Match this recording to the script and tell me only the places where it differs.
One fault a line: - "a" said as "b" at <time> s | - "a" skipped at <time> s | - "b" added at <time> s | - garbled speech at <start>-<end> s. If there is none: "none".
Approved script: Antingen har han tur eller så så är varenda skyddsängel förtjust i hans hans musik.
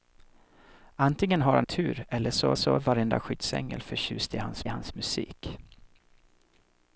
none